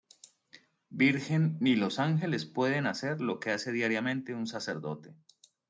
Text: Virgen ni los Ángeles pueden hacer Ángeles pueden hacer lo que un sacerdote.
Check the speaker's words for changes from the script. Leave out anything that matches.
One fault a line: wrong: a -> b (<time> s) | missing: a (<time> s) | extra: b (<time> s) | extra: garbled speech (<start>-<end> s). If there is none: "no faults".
wrong: Ángeles pueden hacer lo que -> lo que hace diariamente (3.2 s)